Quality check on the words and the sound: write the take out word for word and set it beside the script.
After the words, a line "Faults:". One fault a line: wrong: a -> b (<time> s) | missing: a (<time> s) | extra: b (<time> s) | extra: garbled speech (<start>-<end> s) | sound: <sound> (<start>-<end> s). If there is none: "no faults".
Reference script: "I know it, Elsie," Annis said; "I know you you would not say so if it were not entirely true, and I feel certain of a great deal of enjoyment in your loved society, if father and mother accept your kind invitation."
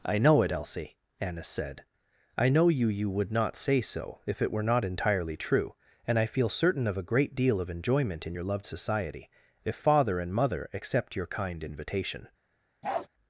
"I know it, Elsie," Annis said; "I know you you would not say so if it were not entirely true, and I feel certain of a great deal of enjoyment in your loved society, if father and mother accept your kind invitation."
Faults:
sound: bark (12.8-13.1 s)